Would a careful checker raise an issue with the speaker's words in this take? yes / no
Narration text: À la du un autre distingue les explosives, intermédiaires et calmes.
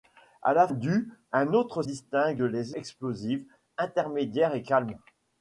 no